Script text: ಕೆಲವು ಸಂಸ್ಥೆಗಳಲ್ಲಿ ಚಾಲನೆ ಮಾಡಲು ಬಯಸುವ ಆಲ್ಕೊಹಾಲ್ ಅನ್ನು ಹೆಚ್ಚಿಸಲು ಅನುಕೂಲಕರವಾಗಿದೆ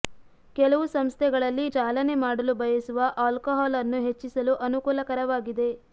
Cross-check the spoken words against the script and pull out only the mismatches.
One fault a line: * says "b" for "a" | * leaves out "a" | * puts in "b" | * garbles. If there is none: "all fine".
all fine